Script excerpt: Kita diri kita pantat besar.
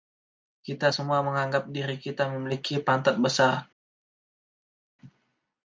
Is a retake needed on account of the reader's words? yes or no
yes